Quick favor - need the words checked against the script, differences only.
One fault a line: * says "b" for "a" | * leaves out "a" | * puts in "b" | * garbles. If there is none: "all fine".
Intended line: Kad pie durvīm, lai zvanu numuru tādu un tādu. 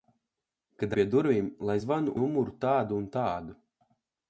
all fine